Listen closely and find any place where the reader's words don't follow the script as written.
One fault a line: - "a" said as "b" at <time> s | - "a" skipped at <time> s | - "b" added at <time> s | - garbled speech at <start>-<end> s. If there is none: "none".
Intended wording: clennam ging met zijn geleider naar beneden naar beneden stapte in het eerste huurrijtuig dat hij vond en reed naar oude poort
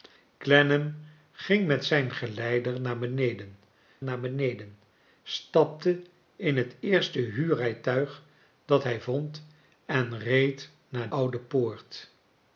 none